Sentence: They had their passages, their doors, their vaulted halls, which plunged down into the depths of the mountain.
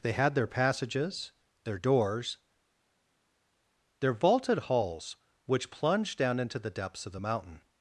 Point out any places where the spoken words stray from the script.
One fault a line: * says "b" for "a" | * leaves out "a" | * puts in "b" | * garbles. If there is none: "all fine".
all fine